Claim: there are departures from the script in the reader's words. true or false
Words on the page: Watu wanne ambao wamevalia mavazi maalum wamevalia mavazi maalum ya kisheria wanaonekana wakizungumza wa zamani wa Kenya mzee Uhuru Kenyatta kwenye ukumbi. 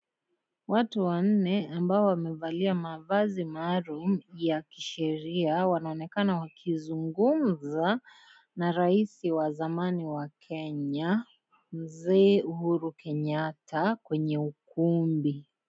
true